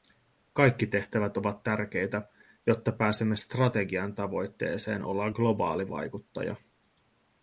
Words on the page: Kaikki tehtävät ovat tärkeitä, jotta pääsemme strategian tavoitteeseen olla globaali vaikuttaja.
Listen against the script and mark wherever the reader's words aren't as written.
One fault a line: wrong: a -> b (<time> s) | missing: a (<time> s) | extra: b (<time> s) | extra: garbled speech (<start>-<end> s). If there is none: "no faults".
no faults